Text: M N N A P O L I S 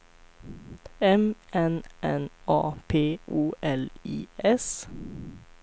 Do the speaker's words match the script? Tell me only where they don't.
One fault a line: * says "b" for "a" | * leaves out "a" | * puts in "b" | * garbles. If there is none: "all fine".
all fine